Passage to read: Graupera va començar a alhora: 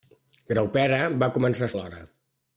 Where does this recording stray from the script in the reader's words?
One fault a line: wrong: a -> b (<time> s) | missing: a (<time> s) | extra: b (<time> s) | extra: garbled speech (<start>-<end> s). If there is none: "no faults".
no faults